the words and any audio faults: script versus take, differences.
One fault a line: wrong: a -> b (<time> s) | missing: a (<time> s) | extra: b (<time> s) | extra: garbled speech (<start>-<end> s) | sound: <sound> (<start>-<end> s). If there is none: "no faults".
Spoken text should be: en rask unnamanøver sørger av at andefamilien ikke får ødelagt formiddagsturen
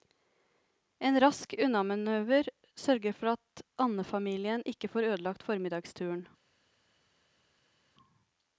wrong: av -> for (3.2 s)